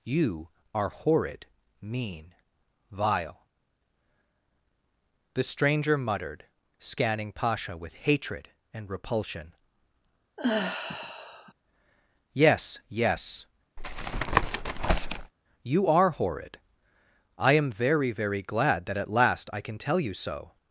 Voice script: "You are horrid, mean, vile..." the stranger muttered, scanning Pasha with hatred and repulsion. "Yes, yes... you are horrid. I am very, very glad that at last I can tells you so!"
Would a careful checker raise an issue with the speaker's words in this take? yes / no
yes